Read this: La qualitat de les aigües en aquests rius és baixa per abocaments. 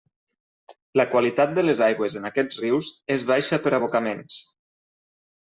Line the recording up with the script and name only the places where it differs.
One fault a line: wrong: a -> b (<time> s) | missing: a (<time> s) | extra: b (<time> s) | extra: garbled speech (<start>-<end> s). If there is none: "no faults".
no faults